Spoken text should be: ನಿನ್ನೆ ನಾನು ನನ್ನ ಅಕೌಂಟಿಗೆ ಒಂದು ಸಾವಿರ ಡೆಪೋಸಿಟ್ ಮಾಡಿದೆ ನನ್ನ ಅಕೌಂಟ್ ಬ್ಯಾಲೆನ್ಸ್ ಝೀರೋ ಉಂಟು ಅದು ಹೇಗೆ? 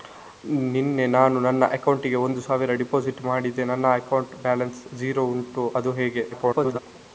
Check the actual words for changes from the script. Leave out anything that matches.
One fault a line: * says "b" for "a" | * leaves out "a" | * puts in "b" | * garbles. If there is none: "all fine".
* garbles